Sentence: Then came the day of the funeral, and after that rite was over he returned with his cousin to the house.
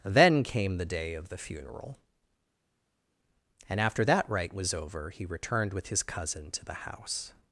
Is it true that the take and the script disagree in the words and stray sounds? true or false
false